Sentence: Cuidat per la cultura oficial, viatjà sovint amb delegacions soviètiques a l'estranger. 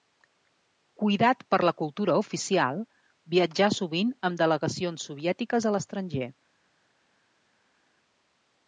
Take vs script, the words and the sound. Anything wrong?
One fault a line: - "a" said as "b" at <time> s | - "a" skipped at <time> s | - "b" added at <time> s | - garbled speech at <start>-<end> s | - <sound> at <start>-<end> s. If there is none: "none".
none